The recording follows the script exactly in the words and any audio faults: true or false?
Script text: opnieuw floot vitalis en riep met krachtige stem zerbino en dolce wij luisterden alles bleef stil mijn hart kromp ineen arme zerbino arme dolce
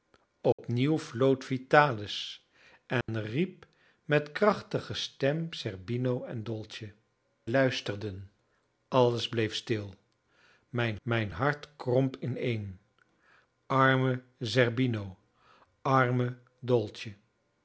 false